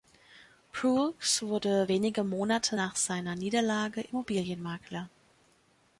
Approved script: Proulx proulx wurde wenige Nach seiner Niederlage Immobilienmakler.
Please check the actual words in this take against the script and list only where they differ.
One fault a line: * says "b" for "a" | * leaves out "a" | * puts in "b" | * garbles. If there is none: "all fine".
* leaves out "proulx"
* puts in "Monate"